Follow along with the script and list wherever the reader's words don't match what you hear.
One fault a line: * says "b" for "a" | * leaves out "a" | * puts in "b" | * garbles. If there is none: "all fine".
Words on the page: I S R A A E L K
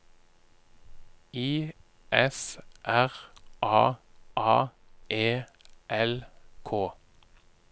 all fine